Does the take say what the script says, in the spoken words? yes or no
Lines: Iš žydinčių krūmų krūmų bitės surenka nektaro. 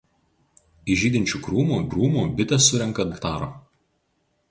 yes